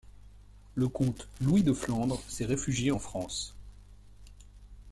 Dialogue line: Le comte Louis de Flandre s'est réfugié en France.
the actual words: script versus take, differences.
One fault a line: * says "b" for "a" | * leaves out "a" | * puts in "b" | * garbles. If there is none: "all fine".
all fine